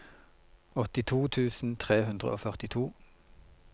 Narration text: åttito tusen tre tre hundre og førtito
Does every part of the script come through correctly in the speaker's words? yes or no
no